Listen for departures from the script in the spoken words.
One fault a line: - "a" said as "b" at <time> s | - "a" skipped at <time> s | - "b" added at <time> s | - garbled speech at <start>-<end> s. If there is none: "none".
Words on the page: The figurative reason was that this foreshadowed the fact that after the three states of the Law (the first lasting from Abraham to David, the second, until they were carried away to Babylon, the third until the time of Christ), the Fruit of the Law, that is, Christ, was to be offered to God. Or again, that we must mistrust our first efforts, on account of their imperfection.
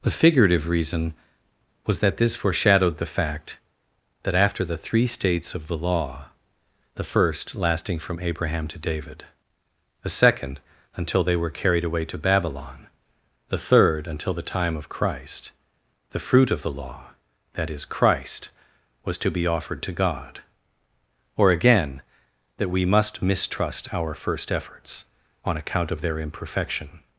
none